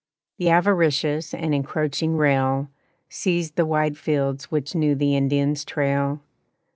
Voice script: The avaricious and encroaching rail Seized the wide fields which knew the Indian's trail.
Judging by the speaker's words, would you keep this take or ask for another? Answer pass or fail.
pass